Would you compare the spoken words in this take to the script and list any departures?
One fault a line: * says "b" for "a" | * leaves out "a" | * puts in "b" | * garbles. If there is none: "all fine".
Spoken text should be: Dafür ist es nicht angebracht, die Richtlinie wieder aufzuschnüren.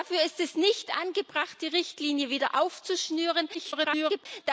* garbles